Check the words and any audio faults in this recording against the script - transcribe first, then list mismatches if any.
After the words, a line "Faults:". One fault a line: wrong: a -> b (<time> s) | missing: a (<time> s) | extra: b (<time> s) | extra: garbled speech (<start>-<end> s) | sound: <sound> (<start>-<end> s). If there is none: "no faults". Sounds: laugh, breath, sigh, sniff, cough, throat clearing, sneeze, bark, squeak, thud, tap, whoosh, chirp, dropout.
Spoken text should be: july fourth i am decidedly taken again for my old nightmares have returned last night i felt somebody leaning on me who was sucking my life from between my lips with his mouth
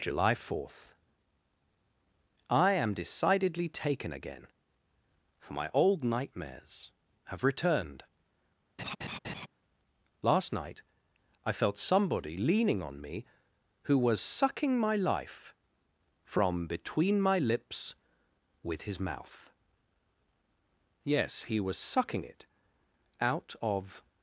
july fourth i am decidedly taken again for my old nightmares have returned last night i felt somebody leaning on me who was sucking my life from between my lips with his mouth yes he was sucking it out of
Faults:
sound: laugh (8.8-9.5 s)
extra: yes he was sucking it out of (21.0 s)